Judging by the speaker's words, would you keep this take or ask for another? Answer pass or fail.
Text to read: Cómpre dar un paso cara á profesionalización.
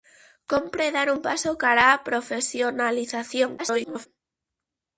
fail